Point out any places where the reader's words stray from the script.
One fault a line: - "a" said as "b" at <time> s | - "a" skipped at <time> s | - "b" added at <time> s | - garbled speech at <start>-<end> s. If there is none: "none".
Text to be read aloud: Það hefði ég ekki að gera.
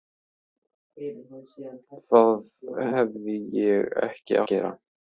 none